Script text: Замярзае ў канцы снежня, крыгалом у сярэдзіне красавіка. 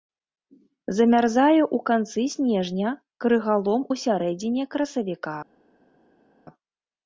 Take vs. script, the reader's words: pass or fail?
pass